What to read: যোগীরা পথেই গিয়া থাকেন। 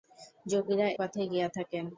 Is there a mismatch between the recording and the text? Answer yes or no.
no